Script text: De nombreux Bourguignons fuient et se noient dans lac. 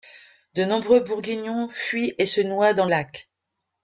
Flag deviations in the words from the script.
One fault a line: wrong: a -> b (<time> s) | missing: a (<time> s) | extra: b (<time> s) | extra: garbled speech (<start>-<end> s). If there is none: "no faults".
no faults